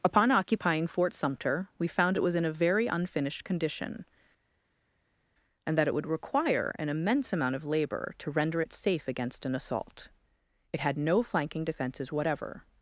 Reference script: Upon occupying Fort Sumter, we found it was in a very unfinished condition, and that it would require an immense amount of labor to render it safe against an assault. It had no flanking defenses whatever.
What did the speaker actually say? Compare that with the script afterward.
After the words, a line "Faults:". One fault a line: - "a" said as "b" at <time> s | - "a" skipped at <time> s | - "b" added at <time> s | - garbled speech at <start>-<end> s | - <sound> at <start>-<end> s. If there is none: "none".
Upon occupying Fort Sumter, we found it was in a very unfinished condition, and that it would require an immense amount of labor to render it safe against an assault. It had no flanking defenses whatever.
Faults:
none